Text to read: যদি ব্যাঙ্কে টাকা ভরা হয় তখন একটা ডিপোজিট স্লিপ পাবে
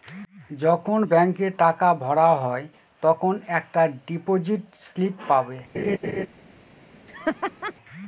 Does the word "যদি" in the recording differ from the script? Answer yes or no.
yes